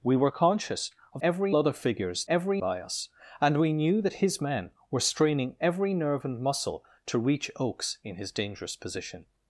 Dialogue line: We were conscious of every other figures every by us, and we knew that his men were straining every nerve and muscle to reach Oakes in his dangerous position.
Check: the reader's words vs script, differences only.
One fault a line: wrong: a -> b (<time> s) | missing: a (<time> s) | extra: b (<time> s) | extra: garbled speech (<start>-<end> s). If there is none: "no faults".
no faults